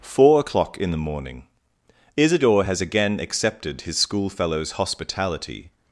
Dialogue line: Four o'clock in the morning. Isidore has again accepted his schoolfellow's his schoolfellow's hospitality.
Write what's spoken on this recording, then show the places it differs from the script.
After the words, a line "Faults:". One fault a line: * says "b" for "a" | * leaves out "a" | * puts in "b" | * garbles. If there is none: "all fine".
Four o'clock in the morning. Isidore has again accepted his schoolfellow's hospitality.
Faults:
* leaves out "his schoolfellow's"